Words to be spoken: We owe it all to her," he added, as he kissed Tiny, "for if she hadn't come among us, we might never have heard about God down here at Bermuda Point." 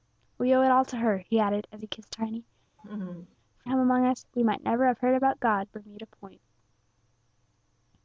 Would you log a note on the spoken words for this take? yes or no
yes